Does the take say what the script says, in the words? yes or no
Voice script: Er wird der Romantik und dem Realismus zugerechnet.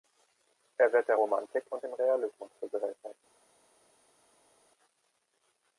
yes